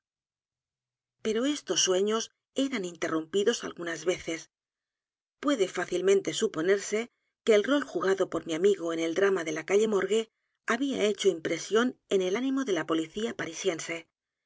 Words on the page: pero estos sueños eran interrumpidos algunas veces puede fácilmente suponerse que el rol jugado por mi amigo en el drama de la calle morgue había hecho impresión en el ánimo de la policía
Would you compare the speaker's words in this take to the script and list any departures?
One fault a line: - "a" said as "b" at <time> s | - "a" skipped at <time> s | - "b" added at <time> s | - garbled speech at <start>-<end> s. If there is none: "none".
none